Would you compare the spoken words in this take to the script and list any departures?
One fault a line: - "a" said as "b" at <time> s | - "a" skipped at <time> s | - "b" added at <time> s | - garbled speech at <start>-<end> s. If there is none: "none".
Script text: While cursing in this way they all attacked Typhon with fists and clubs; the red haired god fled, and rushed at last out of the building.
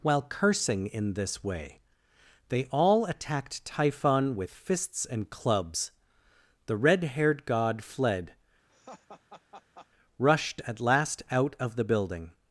- "and" skipped at 8.3 s